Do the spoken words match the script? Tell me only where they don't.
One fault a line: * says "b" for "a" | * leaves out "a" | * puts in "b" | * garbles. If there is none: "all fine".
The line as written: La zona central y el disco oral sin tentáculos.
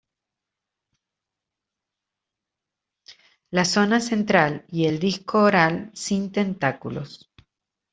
all fine